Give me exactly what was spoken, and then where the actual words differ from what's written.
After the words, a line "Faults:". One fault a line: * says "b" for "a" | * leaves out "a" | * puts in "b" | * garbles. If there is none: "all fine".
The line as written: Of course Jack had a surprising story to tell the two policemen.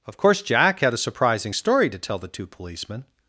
Of course Jack had a surprising story to tell the two policemen.
Faults:
all fine